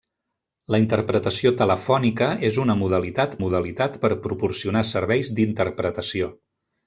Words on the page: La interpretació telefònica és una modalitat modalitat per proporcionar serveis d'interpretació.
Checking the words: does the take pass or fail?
pass